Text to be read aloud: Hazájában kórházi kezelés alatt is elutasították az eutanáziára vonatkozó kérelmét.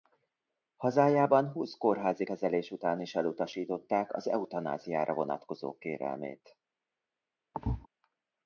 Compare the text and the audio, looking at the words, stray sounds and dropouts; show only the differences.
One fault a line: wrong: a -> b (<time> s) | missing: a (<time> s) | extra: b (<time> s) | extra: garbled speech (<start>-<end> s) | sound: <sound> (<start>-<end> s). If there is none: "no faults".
extra: húsz (1.5 s)
wrong: alatt -> után (2.7 s)
sound: thud (7.5-7.9 s)